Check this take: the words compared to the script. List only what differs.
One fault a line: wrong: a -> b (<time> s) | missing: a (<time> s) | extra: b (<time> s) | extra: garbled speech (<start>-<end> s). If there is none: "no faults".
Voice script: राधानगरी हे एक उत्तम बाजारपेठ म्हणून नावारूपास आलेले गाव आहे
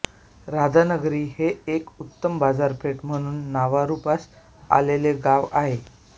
no faults